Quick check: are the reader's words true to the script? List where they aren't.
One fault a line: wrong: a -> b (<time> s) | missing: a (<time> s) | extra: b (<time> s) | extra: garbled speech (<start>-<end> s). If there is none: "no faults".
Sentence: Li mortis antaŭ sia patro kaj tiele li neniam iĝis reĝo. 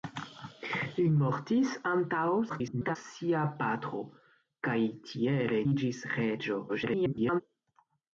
extra: garbled speech (2.5-3.0 s)
missing: li neniam (5.6 s)
extra: garbled speech (6.7-7.4 s)